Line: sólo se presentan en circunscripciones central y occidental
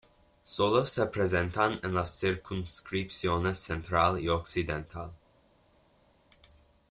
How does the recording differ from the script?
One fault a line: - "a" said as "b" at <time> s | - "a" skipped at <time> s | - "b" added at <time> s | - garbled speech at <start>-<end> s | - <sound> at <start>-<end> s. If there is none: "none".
- "las" added at 1.9 s